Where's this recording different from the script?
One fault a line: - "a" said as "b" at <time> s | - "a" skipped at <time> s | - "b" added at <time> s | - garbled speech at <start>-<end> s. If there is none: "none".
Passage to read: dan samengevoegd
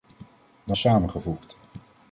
none